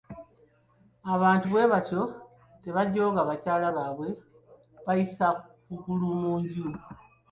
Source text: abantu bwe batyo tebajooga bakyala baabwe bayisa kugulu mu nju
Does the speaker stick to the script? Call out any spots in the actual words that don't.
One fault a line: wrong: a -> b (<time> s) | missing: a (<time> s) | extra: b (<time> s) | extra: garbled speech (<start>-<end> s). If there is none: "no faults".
no faults